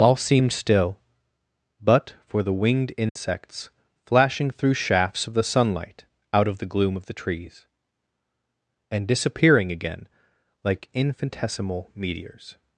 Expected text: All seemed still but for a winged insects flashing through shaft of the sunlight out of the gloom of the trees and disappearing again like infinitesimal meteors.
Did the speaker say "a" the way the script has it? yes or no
no